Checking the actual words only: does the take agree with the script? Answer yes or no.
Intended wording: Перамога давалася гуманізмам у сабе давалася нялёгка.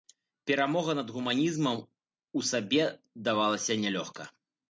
no